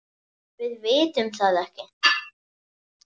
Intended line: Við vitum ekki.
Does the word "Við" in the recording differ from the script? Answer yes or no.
no